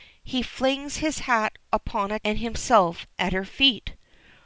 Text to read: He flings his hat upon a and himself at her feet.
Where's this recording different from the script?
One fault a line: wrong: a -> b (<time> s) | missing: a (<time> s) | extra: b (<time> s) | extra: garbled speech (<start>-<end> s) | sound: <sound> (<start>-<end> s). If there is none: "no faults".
no faults